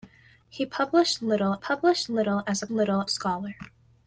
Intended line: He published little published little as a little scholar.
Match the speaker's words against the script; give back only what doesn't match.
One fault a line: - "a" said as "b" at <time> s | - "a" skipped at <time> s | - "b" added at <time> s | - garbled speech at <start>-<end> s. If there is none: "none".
none